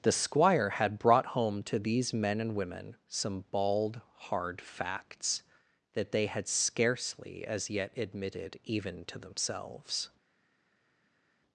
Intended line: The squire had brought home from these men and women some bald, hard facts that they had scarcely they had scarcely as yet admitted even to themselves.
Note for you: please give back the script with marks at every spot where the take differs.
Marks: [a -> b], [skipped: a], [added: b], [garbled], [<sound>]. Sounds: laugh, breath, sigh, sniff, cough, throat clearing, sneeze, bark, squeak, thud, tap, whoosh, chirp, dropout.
The squire had brought home [from -> to] these men and women some bald, hard facts that they had scarcely [skipped: they had scarcely] as yet admitted even to themselves.